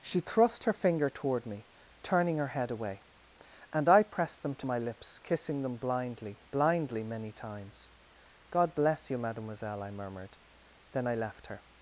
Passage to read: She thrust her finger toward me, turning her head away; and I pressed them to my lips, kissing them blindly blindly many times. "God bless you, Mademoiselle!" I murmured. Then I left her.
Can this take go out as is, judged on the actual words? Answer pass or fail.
pass